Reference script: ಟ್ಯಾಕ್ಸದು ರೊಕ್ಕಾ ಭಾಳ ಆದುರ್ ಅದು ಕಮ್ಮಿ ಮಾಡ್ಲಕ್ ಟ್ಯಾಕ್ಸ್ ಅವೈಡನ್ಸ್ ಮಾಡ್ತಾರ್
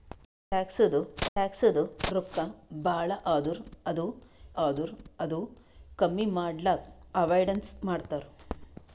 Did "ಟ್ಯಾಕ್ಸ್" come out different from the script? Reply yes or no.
yes